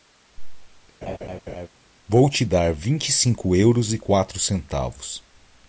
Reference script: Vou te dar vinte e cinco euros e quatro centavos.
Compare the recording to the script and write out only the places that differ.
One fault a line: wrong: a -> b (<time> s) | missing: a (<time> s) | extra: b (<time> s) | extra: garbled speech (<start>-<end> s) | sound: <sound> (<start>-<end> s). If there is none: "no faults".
sound: laugh (1.0-1.7 s)